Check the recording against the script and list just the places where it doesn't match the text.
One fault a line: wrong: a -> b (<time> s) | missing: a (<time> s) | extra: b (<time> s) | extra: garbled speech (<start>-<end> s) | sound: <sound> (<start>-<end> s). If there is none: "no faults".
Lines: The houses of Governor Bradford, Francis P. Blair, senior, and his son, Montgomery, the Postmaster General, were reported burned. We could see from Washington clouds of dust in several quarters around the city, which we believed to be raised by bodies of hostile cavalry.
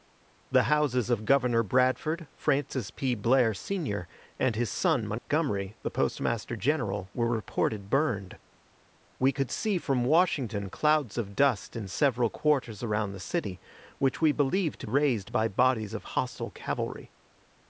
sound: dropout (5.2-5.3 s)
missing: be (14.9 s)